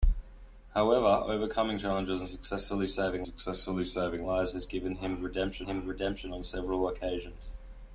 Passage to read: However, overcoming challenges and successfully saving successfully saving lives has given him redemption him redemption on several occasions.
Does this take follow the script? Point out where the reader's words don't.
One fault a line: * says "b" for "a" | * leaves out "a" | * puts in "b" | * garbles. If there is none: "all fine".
all fine